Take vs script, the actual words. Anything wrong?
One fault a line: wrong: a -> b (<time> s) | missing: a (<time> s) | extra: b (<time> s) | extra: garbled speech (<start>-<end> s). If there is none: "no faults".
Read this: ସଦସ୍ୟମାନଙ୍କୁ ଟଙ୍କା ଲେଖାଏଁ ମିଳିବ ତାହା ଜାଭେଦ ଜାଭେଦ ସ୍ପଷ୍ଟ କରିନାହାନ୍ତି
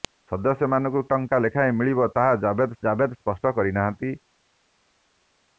no faults